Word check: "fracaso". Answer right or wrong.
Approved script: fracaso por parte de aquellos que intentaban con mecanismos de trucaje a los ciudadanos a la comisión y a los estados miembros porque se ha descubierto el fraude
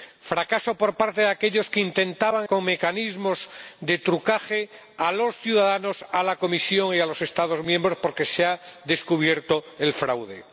right